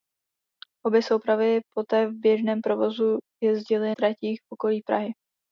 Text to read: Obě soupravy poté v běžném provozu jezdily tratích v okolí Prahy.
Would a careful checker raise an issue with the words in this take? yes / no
no